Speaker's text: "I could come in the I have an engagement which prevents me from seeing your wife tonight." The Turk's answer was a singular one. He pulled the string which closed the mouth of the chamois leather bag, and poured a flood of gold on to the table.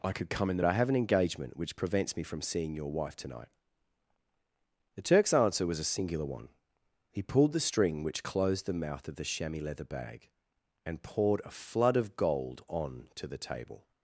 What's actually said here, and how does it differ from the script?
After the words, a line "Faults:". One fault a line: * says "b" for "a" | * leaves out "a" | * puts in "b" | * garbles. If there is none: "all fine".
"I could come in the I have an engagement which prevents me from seeing your wife tonight." The Turk's answer was a singular one. He pulled the string which closed the mouth of the chamois leather bag, and poured a flood of gold on to the table.
Faults:
all fine